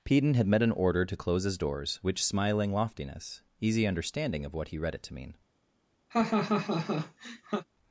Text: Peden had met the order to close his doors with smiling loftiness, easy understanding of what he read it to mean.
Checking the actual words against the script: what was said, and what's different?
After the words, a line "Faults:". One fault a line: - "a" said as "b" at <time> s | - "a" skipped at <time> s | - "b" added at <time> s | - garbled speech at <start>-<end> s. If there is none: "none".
Peden had met an order to close his doors which smiling loftiness, easy understanding of what he read it to mean.
Faults:
- "the" said as "an" at 0.6 s
- "with" said as "which" at 2.0 s